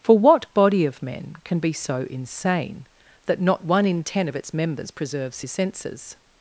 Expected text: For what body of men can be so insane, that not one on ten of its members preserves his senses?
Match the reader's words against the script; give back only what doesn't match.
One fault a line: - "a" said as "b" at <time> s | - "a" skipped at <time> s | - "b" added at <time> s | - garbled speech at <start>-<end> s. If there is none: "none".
- "on" said as "in" at 3.9 s